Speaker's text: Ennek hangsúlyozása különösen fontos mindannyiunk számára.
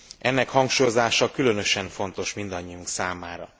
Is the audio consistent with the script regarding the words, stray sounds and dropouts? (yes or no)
yes